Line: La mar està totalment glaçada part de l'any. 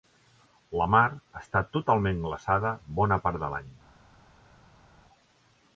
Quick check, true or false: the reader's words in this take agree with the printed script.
false